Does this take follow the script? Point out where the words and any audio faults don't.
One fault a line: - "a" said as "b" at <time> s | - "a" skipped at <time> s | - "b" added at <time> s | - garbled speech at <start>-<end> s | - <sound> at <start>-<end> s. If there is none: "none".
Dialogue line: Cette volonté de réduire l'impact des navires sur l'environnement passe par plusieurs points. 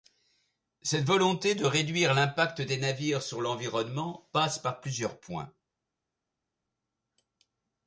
none